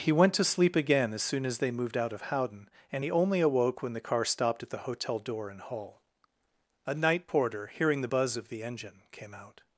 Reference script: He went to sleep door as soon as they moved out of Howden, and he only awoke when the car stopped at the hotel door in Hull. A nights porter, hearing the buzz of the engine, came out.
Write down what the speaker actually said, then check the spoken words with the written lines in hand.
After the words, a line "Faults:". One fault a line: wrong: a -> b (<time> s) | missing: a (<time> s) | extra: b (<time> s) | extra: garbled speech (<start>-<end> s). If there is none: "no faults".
He went to sleep again as soon as they moved out of Howden, and he only awoke when the car stopped at the hotel door in Hull. A night porter, hearing the buzz of the engine, came out.
Faults:
wrong: door -> again (0.8 s)
wrong: nights -> night (6.9 s)